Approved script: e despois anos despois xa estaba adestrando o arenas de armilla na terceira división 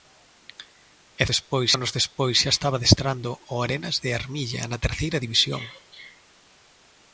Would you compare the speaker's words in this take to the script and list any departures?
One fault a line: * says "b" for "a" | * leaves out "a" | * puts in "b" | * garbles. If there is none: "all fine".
all fine